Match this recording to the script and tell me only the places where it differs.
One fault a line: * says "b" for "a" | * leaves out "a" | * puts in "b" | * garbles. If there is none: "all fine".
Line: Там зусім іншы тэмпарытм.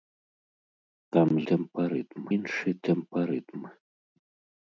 * says "тэмпарытм" for "зусім"